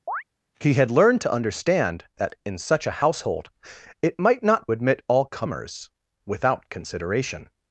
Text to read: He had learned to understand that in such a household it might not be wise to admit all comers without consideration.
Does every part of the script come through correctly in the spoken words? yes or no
no